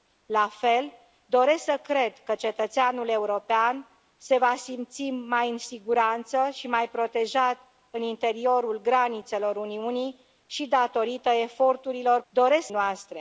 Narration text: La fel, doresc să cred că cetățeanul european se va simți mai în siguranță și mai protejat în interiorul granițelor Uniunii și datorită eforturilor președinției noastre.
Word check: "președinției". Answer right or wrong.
wrong